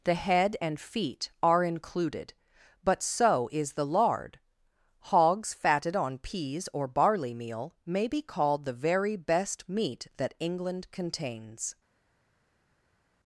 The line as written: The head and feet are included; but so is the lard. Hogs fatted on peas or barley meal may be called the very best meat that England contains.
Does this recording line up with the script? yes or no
yes